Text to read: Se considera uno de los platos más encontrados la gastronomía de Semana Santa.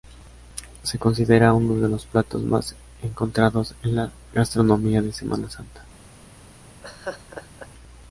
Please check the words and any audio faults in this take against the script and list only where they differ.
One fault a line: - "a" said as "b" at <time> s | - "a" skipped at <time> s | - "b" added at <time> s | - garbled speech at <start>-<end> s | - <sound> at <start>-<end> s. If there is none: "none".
- "en" added at 3.8 s
- laugh at 6.8-7.7 s